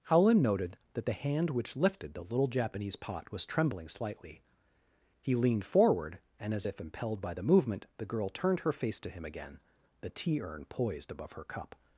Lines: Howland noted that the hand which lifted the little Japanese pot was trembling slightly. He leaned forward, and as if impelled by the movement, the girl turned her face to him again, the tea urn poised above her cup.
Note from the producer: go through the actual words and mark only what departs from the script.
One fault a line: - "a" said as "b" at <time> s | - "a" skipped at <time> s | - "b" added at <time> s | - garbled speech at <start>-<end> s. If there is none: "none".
none